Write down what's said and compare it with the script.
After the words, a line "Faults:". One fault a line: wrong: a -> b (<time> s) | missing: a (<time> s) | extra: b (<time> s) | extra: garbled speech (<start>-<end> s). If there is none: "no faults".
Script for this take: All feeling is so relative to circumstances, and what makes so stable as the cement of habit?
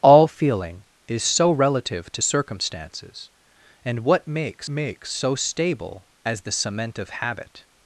All feeling is so relative to circumstances, and what makes makes so stable as the cement of habit?
Faults:
extra: makes (4.7 s)